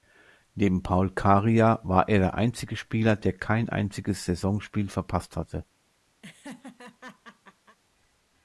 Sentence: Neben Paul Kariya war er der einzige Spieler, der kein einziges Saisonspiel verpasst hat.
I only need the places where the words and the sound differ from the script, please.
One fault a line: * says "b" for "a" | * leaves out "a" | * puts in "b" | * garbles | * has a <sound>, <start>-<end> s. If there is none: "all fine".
* says "hatte" for "hat"
* has a laugh, 6.2-7.8 s